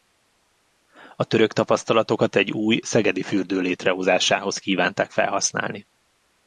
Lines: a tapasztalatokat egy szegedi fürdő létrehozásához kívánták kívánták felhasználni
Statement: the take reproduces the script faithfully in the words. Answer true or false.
false